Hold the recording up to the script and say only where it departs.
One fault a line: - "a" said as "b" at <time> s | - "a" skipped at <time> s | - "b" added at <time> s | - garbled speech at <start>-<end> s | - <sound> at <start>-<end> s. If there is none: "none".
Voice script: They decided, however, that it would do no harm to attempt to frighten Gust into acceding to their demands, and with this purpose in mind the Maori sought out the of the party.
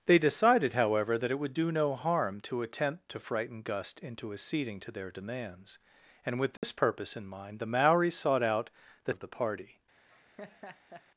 - dropout at 6.6-6.6 s
- laugh at 10.1-11.0 s